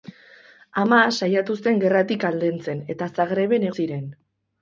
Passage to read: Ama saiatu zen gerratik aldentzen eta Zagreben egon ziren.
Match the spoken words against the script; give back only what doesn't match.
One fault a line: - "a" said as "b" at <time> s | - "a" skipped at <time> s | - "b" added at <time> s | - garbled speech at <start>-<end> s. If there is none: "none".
- "egon" skipped at 3.7 s